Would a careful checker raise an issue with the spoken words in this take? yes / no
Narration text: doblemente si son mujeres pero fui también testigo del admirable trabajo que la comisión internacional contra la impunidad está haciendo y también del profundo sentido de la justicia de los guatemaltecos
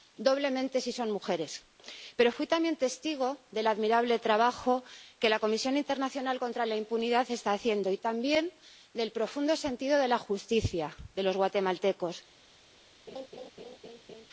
no